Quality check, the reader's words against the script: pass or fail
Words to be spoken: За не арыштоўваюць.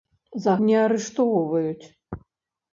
pass